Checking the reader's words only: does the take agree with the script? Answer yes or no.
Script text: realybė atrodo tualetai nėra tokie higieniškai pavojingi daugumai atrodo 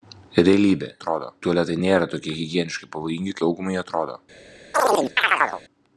yes